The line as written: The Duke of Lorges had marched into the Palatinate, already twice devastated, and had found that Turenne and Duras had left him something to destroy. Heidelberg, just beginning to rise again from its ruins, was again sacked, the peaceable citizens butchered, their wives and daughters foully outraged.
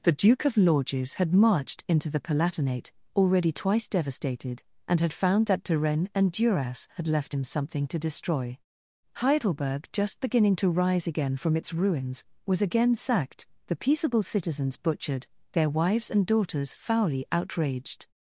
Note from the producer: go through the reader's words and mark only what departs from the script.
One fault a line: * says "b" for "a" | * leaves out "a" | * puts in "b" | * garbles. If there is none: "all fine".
all fine